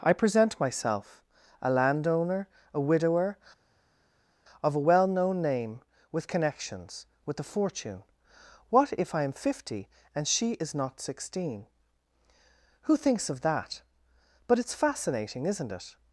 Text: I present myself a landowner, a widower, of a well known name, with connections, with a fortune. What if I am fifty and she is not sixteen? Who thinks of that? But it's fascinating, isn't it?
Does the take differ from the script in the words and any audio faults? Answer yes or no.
no